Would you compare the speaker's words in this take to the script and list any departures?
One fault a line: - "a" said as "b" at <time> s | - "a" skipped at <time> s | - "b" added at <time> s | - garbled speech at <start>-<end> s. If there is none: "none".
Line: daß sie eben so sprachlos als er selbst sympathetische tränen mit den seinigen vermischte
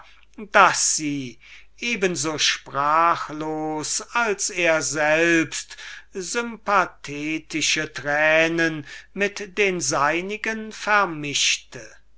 none